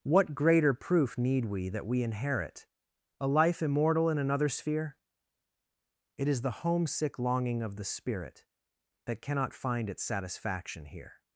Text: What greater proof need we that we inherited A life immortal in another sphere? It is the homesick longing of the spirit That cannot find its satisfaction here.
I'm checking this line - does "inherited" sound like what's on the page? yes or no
no